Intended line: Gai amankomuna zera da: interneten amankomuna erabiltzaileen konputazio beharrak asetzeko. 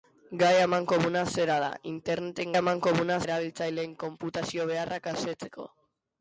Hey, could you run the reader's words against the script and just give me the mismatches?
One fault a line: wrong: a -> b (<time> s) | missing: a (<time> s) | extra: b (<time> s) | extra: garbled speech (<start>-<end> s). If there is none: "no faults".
no faults